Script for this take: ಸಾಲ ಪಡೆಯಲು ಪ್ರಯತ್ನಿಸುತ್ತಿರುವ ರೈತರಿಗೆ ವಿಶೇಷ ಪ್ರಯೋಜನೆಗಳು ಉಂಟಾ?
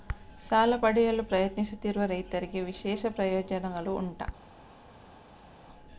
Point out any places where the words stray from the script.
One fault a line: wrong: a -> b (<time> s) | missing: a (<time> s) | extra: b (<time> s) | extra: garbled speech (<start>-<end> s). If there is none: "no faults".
no faults